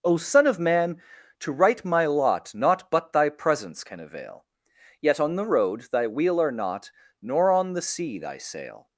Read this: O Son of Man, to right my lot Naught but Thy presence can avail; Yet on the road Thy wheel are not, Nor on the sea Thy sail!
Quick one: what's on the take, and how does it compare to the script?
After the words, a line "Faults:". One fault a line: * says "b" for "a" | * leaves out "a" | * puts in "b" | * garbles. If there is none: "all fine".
O Son of Man, to right my lot Naught but Thy presence can avail; Yet on the road Thy wheel are not, Nor on the sea Thy sail!
Faults:
all fine